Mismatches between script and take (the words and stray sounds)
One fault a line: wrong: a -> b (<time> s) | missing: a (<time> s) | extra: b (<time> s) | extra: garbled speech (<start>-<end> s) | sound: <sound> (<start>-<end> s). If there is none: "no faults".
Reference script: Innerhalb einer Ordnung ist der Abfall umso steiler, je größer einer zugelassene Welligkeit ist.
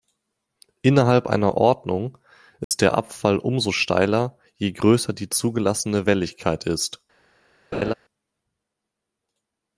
sound: dropout (2.6-2.7 s)
wrong: einer -> die (5.1 s)
sound: laugh (7.7-7.9 s)